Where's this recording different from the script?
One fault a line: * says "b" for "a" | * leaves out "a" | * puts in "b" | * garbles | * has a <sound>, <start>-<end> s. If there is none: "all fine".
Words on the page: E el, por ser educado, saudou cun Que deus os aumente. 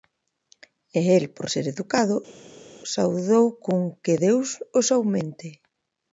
all fine